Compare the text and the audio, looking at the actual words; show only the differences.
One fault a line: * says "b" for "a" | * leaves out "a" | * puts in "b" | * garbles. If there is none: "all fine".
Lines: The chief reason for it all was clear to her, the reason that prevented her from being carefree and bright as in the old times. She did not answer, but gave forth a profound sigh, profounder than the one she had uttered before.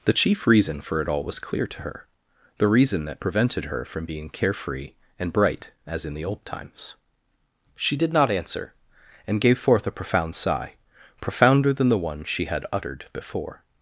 * says "and" for "but"